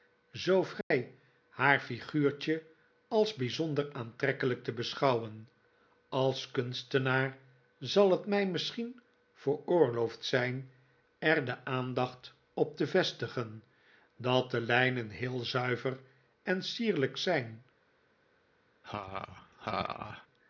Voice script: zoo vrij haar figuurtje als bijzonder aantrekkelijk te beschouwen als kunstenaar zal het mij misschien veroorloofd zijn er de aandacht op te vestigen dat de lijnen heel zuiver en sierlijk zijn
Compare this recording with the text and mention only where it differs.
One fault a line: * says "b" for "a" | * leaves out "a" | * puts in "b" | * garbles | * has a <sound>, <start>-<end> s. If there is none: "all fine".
* has a dropout, 0.8-0.9 s
* has a laugh, 18.8-20.3 s